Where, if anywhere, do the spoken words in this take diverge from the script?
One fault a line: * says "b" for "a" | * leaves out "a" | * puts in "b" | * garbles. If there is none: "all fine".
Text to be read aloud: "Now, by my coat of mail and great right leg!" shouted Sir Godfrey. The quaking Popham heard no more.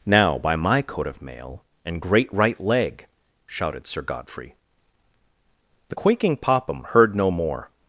all fine